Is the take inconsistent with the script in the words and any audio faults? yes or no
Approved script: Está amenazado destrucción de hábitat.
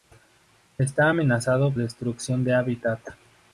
no